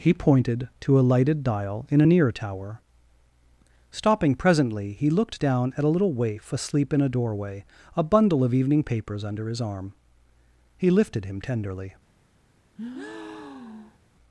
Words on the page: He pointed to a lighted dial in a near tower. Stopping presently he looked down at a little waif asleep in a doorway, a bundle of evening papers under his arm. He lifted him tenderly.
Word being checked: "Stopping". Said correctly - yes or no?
yes